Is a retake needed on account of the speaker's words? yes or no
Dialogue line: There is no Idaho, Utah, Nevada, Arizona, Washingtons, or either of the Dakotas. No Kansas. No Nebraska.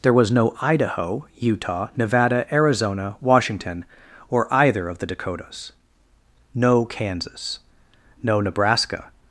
yes